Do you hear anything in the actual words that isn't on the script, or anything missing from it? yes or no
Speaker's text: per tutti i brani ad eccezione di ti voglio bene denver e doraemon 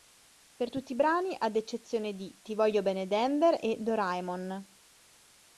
no